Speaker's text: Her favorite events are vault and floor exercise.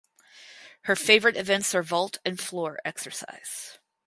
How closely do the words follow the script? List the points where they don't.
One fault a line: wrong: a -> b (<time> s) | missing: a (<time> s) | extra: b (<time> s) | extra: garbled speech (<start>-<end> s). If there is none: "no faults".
no faults